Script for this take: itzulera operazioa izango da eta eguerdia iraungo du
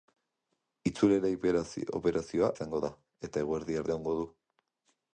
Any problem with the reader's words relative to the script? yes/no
no